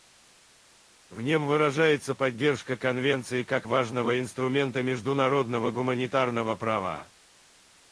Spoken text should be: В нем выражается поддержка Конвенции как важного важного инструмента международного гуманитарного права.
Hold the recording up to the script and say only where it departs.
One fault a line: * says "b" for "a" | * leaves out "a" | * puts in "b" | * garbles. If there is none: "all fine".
* leaves out "важного"